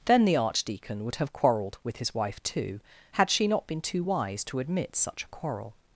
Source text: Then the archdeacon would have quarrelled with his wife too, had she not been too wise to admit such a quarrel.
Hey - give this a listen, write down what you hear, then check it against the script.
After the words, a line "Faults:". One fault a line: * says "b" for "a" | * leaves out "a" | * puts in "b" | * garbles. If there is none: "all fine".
Then the archdeacon would have quarrelled with his wife too, had she not been too wise to admit such a quarrel.
Faults:
all fine